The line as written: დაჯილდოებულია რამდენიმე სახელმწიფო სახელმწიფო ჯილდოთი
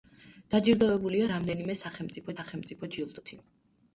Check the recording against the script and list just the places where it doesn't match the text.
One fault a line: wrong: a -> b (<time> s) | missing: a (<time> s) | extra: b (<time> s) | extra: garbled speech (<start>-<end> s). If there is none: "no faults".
no faults